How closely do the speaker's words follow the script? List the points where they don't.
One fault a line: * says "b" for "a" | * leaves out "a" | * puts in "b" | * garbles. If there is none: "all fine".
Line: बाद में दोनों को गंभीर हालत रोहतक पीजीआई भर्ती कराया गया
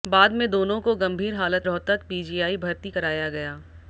all fine